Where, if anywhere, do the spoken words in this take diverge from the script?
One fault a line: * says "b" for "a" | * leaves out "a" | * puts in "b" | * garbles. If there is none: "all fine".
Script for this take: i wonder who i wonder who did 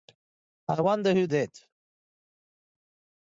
* leaves out "i wonder who"